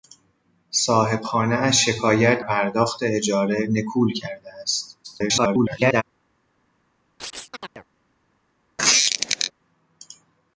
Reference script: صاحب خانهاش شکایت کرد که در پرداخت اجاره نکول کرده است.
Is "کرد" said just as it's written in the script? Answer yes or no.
no